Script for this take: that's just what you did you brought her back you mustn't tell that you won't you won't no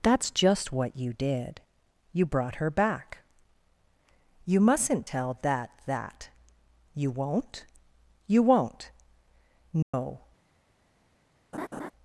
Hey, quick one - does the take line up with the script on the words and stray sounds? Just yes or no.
no